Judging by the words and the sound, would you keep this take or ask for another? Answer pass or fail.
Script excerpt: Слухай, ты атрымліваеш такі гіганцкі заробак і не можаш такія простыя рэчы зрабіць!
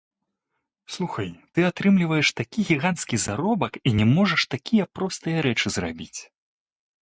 pass